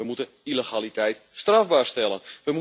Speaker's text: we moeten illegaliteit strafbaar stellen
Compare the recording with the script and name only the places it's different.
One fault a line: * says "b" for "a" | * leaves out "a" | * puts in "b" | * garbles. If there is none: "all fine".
all fine